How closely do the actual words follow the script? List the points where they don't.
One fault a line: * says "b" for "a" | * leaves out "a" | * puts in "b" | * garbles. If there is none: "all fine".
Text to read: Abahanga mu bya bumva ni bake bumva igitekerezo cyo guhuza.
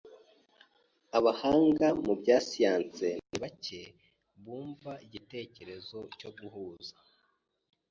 * says "siyansi" for "bumva"